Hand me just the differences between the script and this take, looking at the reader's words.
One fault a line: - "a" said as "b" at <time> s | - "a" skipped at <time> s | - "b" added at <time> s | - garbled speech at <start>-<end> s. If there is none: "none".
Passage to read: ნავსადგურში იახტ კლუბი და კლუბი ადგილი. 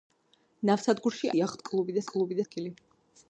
none